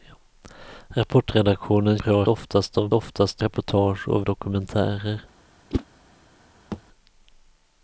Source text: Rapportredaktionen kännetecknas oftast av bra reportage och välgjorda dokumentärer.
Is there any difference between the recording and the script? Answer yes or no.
yes